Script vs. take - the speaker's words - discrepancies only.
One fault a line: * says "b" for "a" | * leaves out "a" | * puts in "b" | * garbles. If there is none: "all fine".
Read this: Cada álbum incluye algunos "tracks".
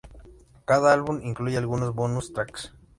* puts in "bonus"